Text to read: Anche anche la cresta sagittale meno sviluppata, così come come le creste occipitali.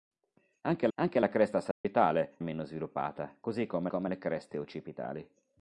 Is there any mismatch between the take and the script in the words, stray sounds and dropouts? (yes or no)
yes